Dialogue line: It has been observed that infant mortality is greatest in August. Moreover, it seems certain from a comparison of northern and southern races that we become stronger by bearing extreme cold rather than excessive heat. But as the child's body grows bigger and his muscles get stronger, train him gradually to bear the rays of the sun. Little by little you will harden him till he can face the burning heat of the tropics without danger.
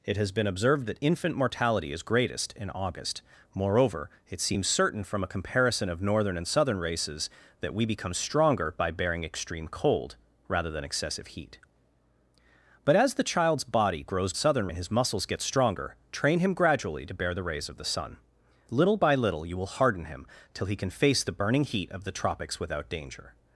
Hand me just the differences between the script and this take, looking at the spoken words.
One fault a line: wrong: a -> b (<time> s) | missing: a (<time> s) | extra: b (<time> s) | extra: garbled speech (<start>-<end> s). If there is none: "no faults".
wrong: bigger -> southern (14.4 s)